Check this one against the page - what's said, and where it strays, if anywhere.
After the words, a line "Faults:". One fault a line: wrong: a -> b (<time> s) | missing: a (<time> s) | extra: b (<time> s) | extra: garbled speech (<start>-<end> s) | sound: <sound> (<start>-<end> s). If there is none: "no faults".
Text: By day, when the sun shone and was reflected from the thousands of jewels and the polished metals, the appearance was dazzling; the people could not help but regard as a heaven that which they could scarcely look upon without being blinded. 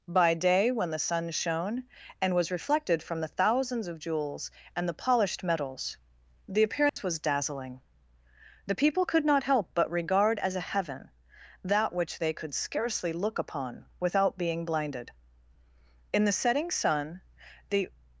By day, when the sun shone and was reflected from the thousands of jewels and the polished metals, the appearance was dazzling; the people could not help but regard as a heaven that which they could scarcely look upon without being blinded. In the setting sun the
Faults:
sound: dropout (6.9-7.0 s)
extra: In the setting sun the (16.1 s)